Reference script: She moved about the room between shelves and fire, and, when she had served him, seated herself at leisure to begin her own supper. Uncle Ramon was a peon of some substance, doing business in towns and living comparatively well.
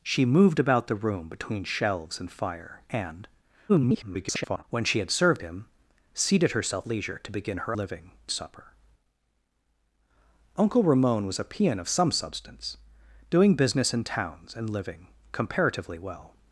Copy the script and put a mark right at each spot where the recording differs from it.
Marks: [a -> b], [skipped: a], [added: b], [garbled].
She moved about the room between shelves and fire, and, [garbled] when she had served him, seated herself [skipped: at] leisure to begin her [own -> living] supper. Uncle Ramon was a peon of some substance, doing business in towns and living comparatively well.